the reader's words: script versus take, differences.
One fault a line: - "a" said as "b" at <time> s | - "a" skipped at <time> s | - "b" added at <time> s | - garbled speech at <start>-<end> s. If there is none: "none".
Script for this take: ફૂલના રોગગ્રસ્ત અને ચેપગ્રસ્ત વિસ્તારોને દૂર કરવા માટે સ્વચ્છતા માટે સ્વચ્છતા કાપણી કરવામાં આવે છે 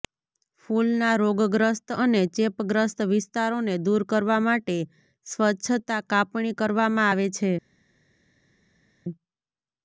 - "માટે સ્વચ્છતા" skipped at 6.0 s